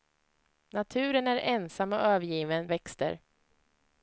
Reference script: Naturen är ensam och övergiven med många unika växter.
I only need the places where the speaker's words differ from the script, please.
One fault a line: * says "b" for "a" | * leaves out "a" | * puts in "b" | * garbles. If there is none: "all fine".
* leaves out "med många unika"